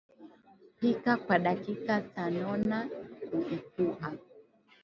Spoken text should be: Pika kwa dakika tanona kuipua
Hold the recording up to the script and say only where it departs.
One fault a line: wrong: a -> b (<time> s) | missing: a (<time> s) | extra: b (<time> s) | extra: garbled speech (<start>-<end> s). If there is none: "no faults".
no faults